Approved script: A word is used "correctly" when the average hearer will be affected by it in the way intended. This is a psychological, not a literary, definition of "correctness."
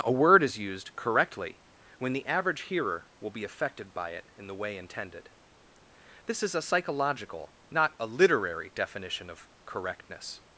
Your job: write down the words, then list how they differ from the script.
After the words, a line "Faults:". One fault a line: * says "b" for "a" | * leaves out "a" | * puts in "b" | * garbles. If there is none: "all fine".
A word is used "correctly" when the average hearer will be affected by it in the way intended. This is a psychological, not a literary, definition of "correctness."
Faults:
all fine